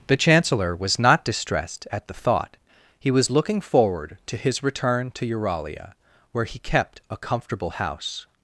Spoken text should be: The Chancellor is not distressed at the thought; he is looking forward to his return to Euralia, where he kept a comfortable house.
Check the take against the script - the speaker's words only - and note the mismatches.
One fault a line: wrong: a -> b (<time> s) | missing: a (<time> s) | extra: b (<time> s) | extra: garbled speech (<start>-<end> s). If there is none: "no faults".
wrong: is -> was (0.8 s)
wrong: is -> was (3.1 s)